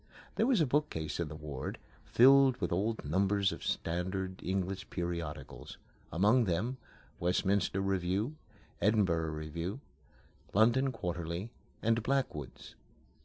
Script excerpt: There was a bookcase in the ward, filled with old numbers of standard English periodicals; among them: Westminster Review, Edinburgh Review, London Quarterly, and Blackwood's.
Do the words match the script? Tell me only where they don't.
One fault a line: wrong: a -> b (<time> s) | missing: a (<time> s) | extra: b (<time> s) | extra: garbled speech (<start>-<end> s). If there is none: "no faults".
no faults